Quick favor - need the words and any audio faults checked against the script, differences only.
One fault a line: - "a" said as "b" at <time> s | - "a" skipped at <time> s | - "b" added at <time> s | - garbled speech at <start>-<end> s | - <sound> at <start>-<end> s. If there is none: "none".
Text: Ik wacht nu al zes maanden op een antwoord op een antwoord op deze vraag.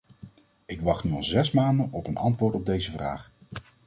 - "een antwoord op" skipped at 2.7 s